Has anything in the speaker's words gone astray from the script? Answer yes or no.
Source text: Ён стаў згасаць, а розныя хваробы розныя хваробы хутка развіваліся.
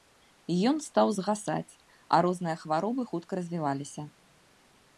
yes